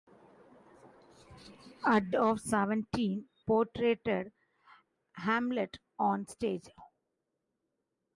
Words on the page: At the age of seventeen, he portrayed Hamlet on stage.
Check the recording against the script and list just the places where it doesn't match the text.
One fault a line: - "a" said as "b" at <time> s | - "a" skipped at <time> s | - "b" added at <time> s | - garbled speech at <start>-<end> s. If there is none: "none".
- "the age" skipped at 2.1 s
- "he" skipped at 3.3 s